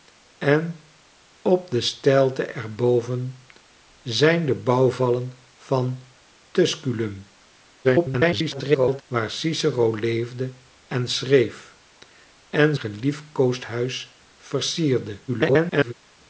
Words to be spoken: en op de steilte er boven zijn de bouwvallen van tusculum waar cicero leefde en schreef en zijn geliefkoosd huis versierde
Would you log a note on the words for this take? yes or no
yes